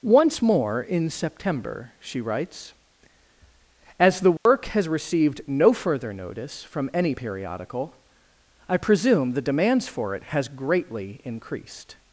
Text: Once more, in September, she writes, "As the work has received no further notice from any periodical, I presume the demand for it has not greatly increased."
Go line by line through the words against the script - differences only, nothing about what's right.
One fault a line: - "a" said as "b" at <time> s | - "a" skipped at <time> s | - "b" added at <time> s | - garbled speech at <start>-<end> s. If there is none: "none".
- "demand" said as "demands" at 9.4 s
- "not" skipped at 10.5 s